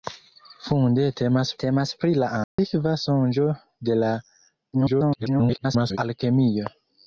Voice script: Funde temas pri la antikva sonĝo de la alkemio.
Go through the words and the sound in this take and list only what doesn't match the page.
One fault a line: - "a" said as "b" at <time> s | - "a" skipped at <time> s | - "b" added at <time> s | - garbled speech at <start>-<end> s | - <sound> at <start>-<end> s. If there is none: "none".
- "temas" added at 1.6 s
- dropout at 2.4-2.6 s
- garbled speech at 4.7-6.0 s